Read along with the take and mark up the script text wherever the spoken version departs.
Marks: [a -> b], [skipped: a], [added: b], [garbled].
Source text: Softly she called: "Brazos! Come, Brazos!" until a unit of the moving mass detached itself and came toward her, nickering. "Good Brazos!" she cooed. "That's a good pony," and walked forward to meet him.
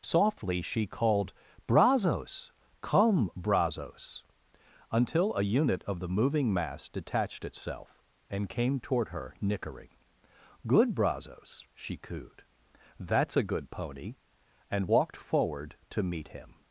Softly she called: "Brazos! Come, Brazos!" until a unit of the moving mass detached itself and came toward her, nickering. "Good Brazos!" she cooed. "That's a good pony," and walked forward to meet him.